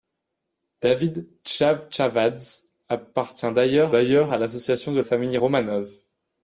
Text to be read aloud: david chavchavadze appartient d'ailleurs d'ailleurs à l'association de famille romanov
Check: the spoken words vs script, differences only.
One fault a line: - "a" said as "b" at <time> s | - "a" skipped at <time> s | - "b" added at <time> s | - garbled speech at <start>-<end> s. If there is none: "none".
none